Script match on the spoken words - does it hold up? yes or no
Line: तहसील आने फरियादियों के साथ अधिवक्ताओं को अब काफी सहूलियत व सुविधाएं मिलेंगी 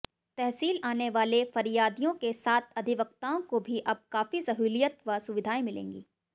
no